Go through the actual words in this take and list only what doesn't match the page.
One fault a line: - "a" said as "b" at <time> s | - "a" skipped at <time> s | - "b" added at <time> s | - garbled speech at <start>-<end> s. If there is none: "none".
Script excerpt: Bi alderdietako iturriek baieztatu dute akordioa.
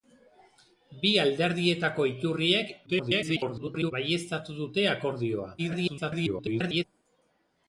- garbled speech at 2.9-3.9 s
- garbled speech at 5.6-6.8 s